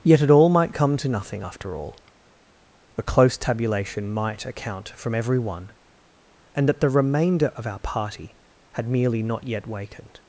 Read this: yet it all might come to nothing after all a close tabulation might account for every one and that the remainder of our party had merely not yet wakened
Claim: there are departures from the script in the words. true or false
true